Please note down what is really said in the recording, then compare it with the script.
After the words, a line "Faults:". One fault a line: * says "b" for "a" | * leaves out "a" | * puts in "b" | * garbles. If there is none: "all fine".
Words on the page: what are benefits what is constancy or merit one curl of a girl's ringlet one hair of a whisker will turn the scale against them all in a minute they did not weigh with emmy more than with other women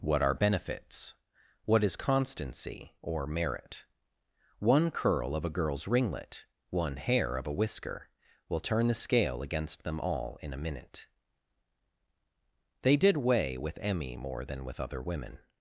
what are benefits what is constancy or merit one curl of a girl's ringlet one hair of a whisker will turn the scale against them all in a minute they did weigh with emmy more than with other women
Faults:
* leaves out "not"